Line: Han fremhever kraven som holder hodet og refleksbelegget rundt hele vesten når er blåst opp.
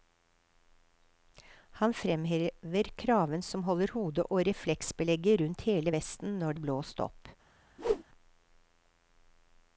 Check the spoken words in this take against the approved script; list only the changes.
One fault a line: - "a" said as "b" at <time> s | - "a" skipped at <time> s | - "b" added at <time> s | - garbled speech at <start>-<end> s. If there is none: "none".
none